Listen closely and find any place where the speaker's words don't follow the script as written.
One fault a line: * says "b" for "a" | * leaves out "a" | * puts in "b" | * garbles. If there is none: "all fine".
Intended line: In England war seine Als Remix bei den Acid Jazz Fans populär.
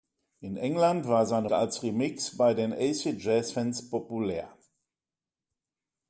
all fine